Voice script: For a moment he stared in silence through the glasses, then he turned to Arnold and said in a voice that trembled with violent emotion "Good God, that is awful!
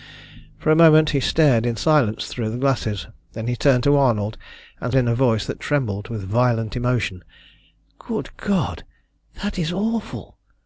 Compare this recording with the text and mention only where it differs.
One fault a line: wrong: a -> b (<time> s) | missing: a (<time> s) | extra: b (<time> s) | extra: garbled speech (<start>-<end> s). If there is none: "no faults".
missing: said (5.0 s)